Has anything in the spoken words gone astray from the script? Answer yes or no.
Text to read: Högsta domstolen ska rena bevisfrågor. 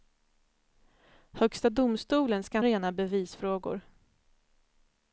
no